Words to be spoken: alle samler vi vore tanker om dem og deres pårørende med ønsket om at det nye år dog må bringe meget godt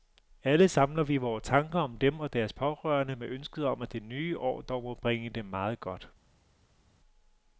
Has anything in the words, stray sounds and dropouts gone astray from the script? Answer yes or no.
yes